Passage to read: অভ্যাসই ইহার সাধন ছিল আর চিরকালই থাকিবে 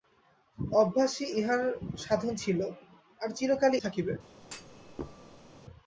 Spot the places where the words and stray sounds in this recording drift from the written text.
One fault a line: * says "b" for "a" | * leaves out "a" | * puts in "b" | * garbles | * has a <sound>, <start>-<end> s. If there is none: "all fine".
* has a thud, 4.4-5.6 s